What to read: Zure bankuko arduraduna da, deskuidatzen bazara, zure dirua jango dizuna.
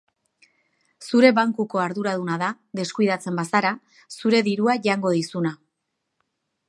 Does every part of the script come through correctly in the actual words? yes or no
yes